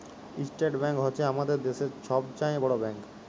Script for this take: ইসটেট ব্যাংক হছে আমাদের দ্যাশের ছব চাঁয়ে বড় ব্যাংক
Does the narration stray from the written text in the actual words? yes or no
no